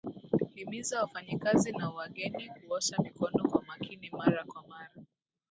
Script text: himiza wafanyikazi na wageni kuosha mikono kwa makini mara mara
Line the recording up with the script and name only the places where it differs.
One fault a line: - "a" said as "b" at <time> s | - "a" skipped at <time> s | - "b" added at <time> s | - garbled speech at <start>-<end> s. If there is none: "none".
- "kwa" added at 4.4 s